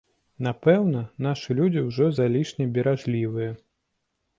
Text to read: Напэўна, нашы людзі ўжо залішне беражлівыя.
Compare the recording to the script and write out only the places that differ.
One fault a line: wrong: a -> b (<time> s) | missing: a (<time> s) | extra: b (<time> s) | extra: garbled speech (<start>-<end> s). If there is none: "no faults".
no faults